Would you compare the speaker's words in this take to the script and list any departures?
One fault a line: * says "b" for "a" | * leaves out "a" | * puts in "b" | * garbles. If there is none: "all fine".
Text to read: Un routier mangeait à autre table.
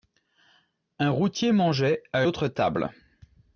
all fine